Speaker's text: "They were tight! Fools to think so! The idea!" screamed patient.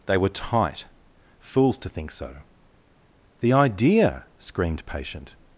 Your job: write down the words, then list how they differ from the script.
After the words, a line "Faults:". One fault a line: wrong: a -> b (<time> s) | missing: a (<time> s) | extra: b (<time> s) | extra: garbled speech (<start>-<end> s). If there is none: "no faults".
"They were tight! Fools to think so! The idea!" screamed patient.
Faults:
no faults